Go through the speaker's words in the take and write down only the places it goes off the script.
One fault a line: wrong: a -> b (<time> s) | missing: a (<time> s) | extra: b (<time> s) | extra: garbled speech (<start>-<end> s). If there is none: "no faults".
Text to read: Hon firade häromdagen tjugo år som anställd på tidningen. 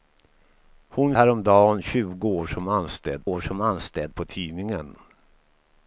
missing: firade (1.1 s)
extra: år som anställd (3.2 s)